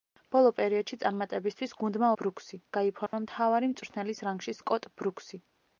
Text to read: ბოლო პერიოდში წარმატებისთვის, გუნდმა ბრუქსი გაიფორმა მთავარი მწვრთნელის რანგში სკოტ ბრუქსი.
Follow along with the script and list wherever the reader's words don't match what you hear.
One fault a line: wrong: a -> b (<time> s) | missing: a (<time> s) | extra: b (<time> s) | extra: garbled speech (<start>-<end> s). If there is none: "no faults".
no faults